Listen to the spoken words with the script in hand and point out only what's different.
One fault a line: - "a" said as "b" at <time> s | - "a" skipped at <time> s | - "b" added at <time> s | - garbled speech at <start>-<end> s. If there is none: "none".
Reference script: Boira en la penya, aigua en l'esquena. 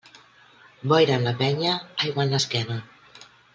none